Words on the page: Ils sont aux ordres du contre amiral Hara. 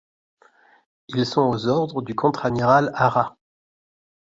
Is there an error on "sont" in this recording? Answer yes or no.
no